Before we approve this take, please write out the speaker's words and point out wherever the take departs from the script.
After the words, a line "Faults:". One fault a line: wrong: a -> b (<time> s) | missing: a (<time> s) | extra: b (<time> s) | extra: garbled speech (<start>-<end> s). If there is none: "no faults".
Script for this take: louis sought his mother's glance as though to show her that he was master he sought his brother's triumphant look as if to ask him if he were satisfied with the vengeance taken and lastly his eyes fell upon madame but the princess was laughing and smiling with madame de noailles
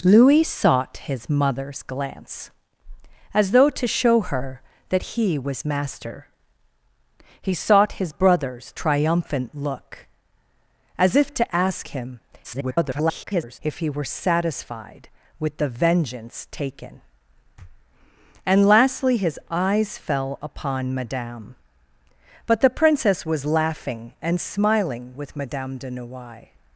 louis sought his mother's glance as though to show her that he was master he sought his brother's triumphant look as if to ask him [garbled] if he were satisfied with the vengeance taken and lastly his eyes fell upon madame but the princess was laughing and smiling with madame de noailles
Faults:
extra: garbled speech (12.4-13.6 s)